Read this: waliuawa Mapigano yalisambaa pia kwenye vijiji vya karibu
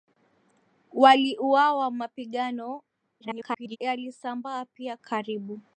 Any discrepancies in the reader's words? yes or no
yes